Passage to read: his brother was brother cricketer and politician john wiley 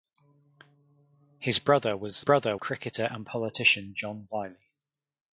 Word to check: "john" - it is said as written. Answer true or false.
true